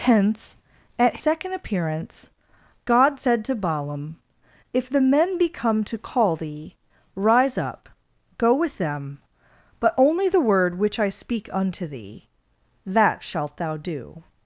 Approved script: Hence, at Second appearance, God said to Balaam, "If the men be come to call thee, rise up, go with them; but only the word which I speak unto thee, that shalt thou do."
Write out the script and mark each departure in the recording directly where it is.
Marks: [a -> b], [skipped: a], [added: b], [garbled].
Hence, at Second appearance, God said to Balaam, "If the men be come to call thee, rise up, go with them; but only the word which I speak unto thee, that shalt thou do."